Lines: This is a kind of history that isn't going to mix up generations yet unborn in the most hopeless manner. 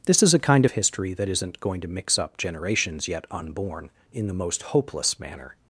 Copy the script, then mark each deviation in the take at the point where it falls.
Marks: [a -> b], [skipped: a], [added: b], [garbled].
This is a kind of history that isn't going to mix up generations yet unborn in the most hopeless manner.